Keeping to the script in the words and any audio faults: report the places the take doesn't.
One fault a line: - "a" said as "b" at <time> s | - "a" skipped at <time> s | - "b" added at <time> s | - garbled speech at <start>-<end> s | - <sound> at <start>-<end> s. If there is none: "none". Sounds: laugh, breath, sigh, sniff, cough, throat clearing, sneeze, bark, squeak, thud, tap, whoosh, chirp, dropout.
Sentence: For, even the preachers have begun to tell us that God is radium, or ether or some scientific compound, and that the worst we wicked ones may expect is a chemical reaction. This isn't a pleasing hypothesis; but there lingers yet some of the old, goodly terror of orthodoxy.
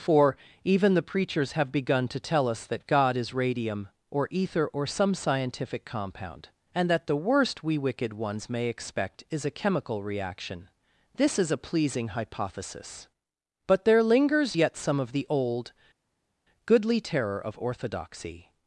- "isn't" said as "is" at 11.4 s